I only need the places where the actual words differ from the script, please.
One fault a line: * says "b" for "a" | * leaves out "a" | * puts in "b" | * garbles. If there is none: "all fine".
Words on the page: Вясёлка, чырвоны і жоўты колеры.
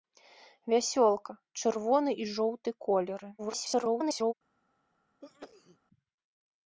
* garbles